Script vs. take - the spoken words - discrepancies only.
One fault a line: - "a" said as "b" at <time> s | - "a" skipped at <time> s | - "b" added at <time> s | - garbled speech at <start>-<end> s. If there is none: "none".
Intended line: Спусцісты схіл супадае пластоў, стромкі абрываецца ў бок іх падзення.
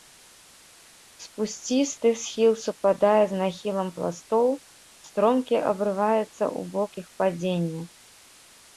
- "з нахілам" added at 3.3 s